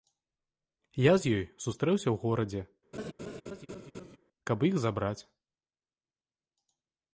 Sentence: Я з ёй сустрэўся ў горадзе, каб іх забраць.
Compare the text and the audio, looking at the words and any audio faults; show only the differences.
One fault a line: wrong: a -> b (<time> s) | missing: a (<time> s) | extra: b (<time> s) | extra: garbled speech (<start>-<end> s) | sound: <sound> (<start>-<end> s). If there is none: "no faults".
sound: laugh (2.9-4.2 s)